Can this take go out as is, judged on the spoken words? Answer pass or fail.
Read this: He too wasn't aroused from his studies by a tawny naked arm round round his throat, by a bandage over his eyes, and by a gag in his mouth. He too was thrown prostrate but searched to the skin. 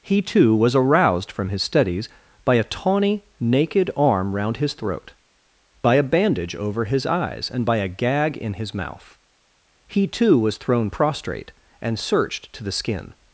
fail